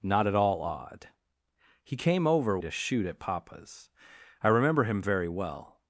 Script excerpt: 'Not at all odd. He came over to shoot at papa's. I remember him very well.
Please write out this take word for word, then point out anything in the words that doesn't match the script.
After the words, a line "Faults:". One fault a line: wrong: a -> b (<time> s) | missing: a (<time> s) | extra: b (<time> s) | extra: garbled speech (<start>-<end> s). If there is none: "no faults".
'Not at all odd. He came over to shoot at papa's. I remember him very well.
Faults:
no faults